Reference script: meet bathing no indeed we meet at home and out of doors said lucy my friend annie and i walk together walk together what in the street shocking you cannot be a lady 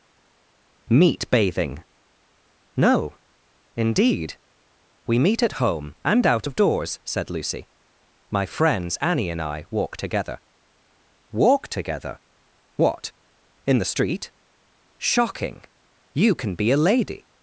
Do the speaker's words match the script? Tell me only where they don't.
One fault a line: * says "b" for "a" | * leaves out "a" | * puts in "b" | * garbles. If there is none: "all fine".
* says "friends" for "friend"
* says "can" for "cannot"